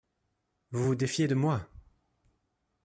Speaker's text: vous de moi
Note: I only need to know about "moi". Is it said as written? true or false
true